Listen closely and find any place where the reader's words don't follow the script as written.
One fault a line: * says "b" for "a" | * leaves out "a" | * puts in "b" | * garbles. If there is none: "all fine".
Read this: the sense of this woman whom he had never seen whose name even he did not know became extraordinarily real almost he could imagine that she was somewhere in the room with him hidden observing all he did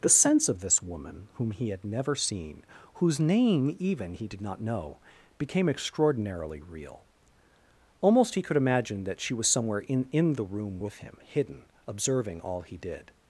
* puts in "in"